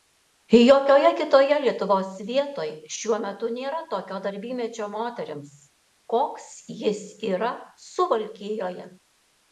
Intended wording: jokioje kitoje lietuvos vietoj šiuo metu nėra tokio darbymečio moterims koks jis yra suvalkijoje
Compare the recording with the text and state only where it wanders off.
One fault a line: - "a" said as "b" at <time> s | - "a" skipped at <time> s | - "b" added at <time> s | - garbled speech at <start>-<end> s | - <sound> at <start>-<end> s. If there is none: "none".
none